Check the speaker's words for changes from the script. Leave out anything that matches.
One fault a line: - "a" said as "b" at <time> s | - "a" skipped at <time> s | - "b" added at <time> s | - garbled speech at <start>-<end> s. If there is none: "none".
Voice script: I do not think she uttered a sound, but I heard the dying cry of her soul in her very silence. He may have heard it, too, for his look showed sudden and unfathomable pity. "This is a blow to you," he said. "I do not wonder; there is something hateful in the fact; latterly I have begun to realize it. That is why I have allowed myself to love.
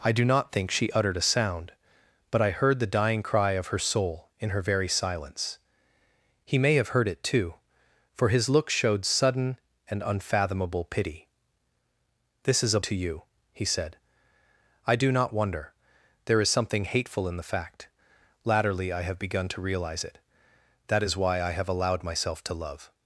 - "blow" skipped at 12.8 s